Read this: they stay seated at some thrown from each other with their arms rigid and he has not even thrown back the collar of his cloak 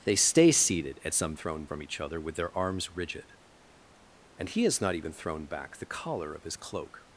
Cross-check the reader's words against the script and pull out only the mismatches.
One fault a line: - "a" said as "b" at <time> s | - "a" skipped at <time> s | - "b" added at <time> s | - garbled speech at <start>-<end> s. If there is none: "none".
none